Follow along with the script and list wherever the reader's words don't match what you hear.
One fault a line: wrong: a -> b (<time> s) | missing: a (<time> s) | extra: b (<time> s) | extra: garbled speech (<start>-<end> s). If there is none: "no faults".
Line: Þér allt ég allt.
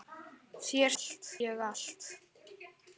no faults